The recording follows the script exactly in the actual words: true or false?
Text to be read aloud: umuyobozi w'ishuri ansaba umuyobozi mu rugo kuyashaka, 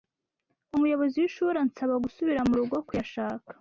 false